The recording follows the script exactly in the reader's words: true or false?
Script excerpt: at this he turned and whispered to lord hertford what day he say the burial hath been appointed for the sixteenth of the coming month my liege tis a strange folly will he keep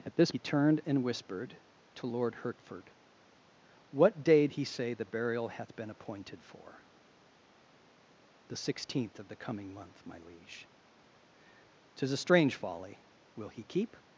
true